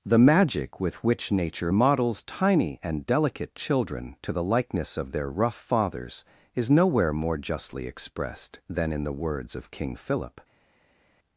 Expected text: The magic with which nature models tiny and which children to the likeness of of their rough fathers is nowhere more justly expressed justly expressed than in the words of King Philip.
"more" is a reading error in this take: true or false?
false